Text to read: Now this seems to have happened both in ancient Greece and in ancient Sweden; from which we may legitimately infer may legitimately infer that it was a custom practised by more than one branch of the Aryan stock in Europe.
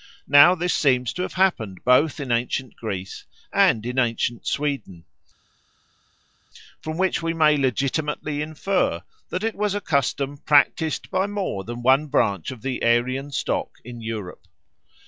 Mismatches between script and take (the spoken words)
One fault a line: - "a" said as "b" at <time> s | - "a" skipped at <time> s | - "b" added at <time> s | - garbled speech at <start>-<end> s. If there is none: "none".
- "may legitimately infer" skipped at 9.0 s